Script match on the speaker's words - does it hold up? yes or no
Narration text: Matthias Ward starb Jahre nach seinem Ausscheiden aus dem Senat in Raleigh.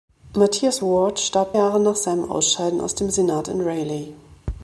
yes